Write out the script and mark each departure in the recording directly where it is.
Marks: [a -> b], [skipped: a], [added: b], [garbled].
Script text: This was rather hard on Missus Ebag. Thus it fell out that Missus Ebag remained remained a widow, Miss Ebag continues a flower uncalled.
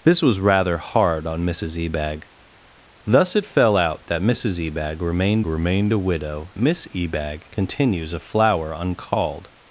This was rather hard on Missus Ebag. Thus it fell out that Missus Ebag remained remained a widow, Miss Ebag continues a flower uncalled.